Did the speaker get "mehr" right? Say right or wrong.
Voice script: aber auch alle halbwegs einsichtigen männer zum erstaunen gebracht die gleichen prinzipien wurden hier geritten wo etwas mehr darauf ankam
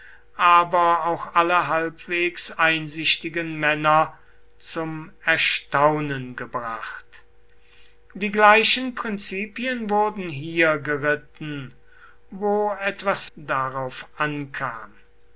wrong